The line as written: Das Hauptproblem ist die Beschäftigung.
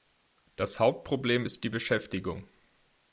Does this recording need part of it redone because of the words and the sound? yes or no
no